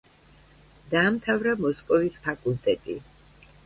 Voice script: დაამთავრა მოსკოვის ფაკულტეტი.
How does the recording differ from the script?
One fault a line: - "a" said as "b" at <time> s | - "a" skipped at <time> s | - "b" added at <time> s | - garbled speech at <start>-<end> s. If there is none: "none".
none